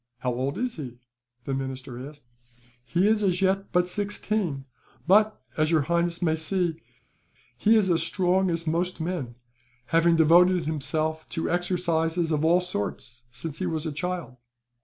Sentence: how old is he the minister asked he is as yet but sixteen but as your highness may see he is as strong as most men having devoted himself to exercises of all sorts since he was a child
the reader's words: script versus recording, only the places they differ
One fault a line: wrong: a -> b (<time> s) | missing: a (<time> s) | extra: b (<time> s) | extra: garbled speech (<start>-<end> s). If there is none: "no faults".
no faults